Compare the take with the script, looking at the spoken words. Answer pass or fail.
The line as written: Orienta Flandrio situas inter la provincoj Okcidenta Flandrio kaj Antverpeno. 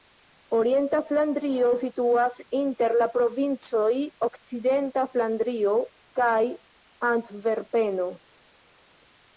pass